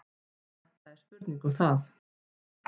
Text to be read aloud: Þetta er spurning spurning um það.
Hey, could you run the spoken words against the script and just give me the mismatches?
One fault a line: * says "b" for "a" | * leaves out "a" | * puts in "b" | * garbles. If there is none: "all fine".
* leaves out "spurning"